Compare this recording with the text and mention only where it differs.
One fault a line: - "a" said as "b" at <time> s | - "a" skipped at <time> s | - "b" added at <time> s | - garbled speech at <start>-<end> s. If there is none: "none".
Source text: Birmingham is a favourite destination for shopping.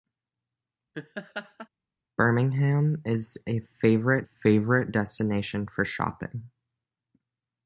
- "favourite" added at 4.2 s